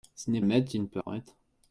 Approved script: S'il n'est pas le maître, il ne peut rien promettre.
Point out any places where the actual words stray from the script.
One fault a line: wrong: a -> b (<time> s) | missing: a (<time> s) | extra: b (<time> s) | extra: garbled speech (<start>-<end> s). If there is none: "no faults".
missing: pas (0.4 s)
missing: rien (1.0 s)